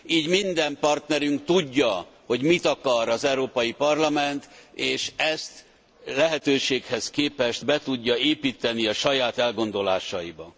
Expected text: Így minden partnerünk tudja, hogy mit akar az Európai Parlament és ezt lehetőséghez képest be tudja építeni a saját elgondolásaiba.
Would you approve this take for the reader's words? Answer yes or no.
yes